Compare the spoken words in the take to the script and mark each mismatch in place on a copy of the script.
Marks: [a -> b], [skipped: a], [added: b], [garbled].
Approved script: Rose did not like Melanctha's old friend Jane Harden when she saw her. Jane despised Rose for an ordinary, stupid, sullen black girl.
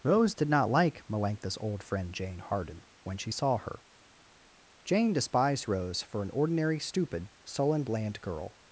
Rose did not like Melanctha's old friend Jane Harden when she saw her. Jane despised Rose for an ordinary, stupid, sullen [black -> bland] girl.